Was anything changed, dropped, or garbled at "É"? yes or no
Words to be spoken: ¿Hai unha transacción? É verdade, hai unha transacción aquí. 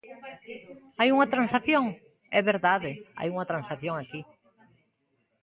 no